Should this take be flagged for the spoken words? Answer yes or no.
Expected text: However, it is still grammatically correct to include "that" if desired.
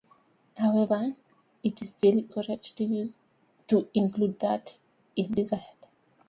yes